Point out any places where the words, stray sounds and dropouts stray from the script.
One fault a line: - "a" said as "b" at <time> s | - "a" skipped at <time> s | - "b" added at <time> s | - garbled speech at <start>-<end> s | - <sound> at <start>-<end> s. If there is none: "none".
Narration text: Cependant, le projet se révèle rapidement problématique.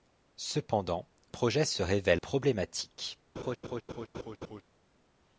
- "le" skipped at 1.1 s
- "rapidement" skipped at 2.2 s
- laugh at 3.4-4.6 s